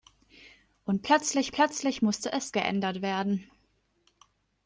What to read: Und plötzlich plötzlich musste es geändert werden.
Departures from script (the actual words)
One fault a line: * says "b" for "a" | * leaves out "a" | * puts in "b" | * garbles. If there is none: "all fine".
all fine